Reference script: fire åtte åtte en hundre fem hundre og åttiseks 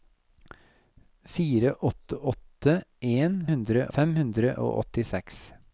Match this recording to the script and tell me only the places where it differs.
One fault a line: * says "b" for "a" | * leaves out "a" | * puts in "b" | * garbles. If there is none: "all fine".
all fine